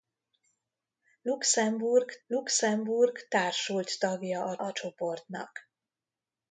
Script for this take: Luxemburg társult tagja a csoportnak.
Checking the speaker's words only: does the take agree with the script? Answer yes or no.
no